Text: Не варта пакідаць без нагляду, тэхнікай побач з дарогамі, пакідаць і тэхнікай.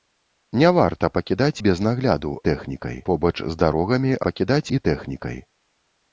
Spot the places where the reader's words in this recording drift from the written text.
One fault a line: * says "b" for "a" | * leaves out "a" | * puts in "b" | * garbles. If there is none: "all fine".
all fine